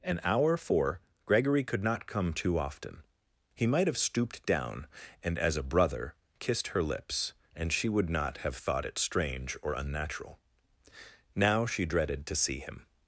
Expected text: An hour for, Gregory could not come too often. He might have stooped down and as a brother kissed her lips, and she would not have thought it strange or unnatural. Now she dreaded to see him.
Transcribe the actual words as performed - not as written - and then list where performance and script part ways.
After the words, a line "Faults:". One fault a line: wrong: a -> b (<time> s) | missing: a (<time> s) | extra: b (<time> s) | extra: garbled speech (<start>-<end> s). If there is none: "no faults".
An hour for, Gregory could not come too often. He might have stooped down and as a brother kissed her lips, and she would not have thought it strange or unnatural. Now she dreaded to see him.
Faults:
no faults